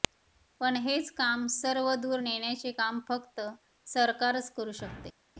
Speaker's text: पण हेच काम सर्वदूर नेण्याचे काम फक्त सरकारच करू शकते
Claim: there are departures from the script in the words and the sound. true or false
false